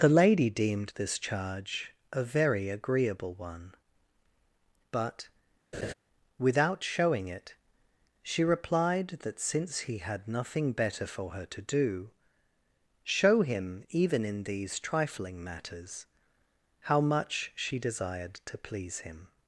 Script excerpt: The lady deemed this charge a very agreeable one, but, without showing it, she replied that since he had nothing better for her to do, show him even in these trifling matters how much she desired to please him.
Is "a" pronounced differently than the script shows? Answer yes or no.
no